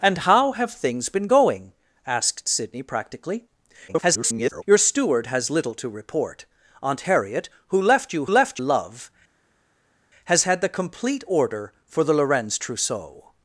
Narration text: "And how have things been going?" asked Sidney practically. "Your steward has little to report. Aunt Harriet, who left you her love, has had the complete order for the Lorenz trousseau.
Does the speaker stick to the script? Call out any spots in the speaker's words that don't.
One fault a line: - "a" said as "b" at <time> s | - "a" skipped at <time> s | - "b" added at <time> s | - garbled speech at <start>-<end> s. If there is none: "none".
- garbled speech at 3.9-4.6 s
- "her" said as "left" at 8.3 s